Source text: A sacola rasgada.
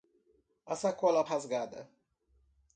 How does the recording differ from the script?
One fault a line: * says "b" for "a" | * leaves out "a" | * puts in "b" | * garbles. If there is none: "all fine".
all fine